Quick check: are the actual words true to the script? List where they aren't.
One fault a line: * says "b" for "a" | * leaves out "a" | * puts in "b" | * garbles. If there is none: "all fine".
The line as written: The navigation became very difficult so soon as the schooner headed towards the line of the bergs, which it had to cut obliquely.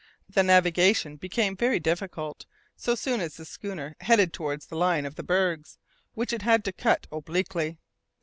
all fine